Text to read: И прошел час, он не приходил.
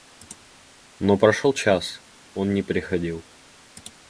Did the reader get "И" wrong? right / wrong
wrong